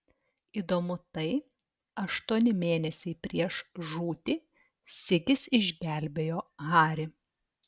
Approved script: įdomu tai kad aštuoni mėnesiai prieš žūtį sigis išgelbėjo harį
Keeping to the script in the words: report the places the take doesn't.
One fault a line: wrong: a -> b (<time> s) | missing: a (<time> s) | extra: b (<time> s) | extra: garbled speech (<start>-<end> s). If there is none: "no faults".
missing: kad (1.2 s)